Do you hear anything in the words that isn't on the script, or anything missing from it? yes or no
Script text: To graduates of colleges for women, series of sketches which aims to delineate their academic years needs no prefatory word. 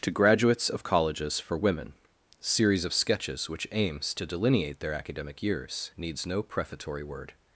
no